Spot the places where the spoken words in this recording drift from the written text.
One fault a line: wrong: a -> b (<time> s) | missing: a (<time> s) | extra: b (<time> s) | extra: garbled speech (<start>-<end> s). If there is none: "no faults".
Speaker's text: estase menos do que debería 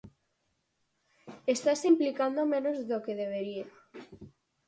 extra: implicando (1.9 s)